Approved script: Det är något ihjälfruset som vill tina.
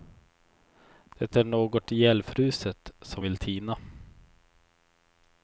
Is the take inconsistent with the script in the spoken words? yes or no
no